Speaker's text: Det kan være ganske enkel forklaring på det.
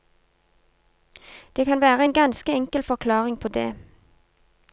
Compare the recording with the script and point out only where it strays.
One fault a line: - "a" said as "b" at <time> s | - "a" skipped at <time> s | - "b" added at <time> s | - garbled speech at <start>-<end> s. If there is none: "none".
- "en" added at 2.0 s